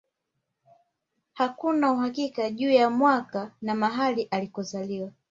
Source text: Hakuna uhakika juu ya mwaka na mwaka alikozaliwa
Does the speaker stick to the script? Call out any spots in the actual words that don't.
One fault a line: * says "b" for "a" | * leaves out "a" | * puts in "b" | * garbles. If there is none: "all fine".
* says "mahali" for "mwaka"